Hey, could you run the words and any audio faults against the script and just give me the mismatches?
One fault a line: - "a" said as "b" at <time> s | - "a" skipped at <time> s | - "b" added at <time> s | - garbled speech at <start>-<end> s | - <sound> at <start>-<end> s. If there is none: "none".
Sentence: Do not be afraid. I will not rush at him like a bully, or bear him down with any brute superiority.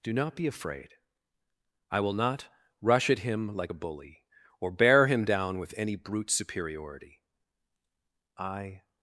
- "I" added at 8.4 s